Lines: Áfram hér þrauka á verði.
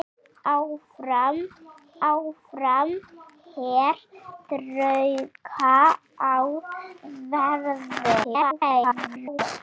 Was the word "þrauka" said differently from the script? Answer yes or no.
no